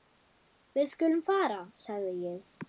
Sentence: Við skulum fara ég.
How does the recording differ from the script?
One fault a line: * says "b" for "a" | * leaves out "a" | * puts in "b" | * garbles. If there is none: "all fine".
* puts in "sagði"